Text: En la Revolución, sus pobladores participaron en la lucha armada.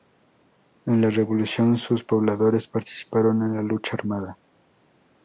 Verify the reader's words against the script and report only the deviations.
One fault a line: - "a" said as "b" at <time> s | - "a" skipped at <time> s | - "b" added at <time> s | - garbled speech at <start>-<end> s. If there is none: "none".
none